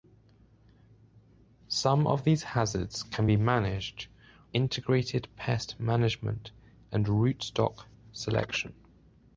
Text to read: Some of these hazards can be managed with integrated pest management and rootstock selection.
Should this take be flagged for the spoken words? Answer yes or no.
yes